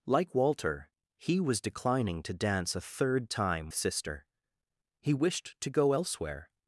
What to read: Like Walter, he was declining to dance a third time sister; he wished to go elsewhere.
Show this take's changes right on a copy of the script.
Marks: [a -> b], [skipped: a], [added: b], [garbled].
Like Walter, he was declining to dance a third time sister; he wished to go elsewhere.